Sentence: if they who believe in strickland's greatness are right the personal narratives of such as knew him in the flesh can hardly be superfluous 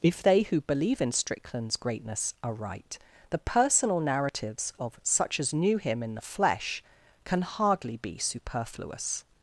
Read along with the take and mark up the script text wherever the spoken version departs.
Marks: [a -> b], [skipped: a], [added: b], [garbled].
if they who believe in strickland's greatness are right the personal narratives of such as knew him in the flesh can hardly be superfluous